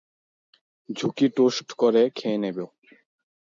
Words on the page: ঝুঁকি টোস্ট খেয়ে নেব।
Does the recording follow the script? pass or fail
fail